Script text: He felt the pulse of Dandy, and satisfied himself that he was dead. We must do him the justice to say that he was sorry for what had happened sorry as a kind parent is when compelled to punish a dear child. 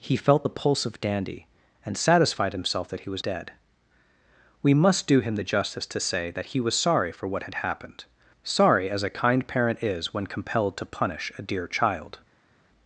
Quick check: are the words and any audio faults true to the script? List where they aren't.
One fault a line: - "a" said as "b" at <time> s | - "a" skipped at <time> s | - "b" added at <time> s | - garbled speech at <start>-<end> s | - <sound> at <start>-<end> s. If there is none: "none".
none